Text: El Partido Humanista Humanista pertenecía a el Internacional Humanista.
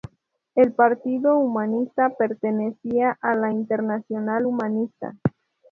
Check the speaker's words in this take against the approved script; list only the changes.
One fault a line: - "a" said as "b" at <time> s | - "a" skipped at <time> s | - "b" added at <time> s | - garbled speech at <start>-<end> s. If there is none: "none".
- "Humanista" skipped at 2.1 s
- "el" said as "la" at 3.4 s